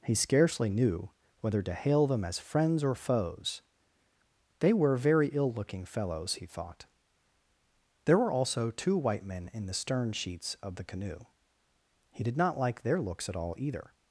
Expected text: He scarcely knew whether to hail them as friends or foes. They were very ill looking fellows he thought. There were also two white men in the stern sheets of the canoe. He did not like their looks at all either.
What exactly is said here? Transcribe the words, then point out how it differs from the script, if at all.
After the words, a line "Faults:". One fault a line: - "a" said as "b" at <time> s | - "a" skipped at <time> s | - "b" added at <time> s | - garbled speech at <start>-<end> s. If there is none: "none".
He scarcely knew whether to hail them as friends or foes. They were very ill looking fellows he thought. There were also two white men in the stern sheets of the canoe. He did not like their looks at all either.
Faults:
none